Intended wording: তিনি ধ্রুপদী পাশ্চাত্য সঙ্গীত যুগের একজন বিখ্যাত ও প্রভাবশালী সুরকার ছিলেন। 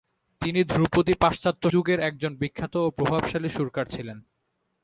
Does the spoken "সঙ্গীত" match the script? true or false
false